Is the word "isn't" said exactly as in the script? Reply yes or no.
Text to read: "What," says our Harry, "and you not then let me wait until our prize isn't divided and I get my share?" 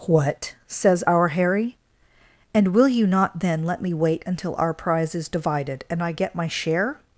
no